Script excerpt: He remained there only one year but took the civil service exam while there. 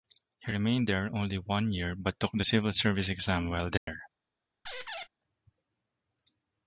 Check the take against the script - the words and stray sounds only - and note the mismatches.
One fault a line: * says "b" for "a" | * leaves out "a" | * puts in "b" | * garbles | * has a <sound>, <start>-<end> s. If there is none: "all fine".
* has a dropout, 3.8-3.9 s
* has a squeak, 4.7-5.1 s